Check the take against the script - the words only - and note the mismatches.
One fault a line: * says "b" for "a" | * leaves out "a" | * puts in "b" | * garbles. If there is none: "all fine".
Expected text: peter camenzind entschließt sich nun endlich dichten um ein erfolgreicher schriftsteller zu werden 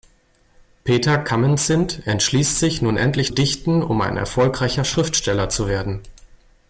all fine